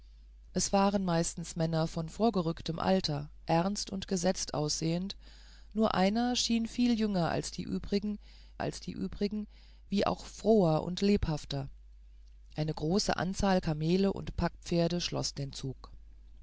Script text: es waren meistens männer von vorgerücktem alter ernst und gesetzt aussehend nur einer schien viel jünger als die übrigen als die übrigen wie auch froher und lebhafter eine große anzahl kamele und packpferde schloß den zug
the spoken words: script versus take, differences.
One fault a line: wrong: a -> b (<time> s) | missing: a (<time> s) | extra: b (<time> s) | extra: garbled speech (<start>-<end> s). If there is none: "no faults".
no faults